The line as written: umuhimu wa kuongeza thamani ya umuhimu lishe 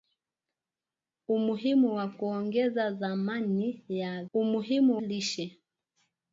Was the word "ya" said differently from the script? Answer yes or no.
no